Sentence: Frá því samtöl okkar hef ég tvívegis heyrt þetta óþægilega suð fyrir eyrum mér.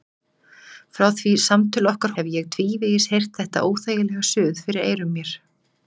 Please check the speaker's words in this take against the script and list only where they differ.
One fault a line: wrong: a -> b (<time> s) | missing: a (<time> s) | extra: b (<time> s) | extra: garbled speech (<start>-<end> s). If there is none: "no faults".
no faults